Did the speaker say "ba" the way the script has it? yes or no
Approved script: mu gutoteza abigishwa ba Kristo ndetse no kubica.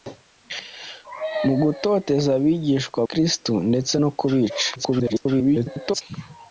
no